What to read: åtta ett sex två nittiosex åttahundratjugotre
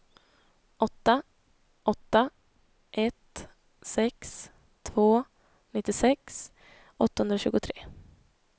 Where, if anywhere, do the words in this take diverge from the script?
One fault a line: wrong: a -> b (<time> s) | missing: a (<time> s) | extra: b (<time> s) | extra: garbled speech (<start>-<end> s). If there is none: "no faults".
extra: åtta (1.8 s)